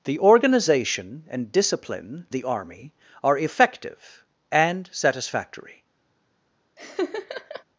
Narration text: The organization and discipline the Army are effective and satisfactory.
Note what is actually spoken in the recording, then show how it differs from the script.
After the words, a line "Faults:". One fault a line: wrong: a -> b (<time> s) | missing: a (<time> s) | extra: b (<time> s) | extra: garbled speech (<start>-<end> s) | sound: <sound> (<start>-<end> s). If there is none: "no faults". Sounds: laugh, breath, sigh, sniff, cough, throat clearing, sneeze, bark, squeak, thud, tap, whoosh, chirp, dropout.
The organization and discipline the Army are effective and satisfactory.
Faults:
sound: laugh (6.8-7.6 s)